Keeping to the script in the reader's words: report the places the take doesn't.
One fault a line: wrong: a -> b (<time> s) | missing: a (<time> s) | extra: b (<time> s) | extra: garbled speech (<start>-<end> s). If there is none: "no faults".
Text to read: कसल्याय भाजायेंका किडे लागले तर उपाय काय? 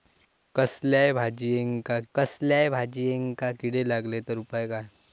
extra: कसल्याय भाजायेंका (2.1 s)